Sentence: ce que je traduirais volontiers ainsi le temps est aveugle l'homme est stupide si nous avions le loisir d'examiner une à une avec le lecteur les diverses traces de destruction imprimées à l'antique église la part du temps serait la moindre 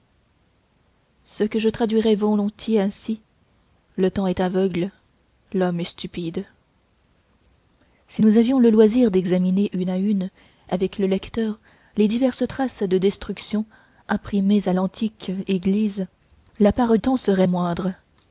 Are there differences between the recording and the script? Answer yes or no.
yes